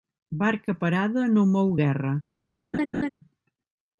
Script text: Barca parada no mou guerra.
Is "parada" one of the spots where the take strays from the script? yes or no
no